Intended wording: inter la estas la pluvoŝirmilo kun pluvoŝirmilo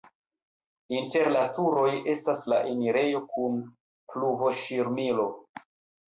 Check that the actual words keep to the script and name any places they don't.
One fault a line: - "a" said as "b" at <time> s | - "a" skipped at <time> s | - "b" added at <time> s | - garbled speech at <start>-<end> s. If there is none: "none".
- "turoj" added at 1.6 s
- "pluvoŝirmilo" said as "enirejo" at 2.7 s